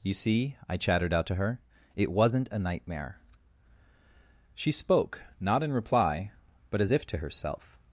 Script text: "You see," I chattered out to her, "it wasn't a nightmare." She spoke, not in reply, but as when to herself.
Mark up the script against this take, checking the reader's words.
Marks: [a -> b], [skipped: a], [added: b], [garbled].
"You see," I chattered out to her, "it wasn't a nightmare." She spoke, not in reply, but as [when -> if] to herself.